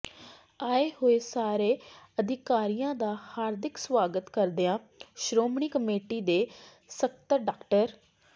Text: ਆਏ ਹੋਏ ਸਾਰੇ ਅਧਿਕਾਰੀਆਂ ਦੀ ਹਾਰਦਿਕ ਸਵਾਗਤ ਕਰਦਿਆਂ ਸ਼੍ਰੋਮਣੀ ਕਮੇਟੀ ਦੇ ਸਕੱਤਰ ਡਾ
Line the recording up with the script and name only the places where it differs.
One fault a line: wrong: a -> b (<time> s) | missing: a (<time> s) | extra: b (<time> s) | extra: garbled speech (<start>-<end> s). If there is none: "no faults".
wrong: ਦੀ -> ਦਾ (3.0 s)